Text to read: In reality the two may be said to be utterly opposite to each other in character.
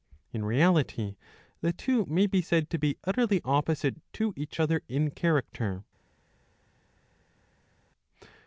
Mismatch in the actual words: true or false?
false